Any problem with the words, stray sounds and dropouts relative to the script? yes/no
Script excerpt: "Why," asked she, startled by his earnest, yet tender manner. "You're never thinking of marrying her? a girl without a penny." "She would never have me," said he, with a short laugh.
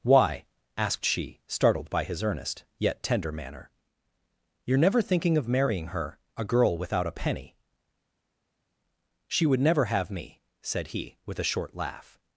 no